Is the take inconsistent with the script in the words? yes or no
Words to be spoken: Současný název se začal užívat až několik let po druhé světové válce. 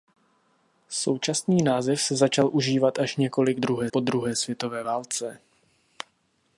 yes